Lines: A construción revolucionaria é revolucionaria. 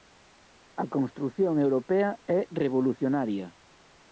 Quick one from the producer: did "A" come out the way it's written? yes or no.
yes